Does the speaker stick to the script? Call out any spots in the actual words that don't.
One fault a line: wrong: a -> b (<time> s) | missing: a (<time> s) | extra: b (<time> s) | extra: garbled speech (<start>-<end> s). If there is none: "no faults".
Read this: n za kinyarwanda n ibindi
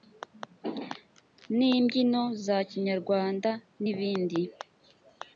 extra: imbyino (1.7 s)